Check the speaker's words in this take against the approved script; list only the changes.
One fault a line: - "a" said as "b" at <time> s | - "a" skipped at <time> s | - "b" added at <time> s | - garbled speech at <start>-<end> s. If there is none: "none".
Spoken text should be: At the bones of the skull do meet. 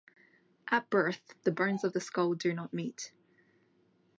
- "birth" added at 0.9 s
- "not" added at 2.5 s